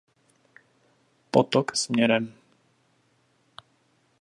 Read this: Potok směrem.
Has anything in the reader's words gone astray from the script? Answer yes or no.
no